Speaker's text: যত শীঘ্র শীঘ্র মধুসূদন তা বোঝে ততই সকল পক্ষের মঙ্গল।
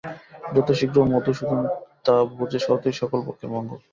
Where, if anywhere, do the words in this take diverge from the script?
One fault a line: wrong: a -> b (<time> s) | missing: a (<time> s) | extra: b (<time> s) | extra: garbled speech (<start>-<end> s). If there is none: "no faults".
missing: শীঘ্র (1.0 s)